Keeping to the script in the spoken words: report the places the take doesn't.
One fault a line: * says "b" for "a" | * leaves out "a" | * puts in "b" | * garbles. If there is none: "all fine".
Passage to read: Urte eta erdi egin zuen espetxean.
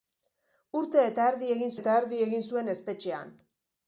* puts in "eta erdi egin"